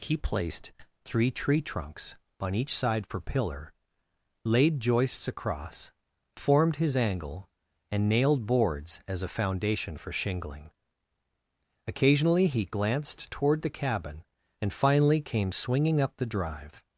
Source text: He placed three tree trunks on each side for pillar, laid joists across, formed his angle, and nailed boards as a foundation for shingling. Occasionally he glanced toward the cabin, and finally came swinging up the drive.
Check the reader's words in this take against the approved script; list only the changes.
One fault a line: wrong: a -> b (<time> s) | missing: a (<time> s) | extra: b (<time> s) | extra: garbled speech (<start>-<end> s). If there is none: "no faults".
no faults